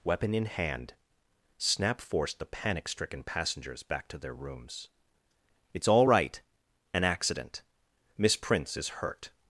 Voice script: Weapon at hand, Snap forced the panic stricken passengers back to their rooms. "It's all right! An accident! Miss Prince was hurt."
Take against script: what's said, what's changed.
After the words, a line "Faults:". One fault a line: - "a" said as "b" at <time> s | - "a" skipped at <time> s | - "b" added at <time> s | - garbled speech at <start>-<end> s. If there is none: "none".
Weapon in hand, Snap forced the panic stricken passengers back to their rooms. "It's all right! An accident! Miss Prince is hurt."
Faults:
- "at" said as "in" at 0.3 s
- "was" said as "is" at 8.8 s